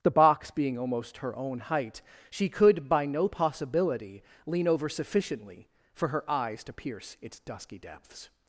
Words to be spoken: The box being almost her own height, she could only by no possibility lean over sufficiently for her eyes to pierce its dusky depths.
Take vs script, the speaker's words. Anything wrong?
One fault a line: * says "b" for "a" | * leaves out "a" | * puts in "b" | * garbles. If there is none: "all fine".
* leaves out "only"